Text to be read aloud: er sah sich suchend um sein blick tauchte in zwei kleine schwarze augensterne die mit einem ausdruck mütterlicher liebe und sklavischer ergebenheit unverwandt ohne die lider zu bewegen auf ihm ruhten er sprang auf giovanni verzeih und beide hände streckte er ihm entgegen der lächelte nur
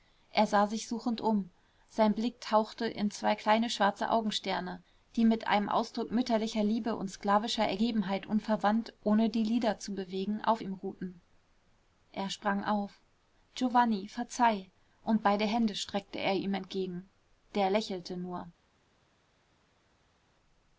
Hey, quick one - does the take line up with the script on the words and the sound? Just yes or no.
yes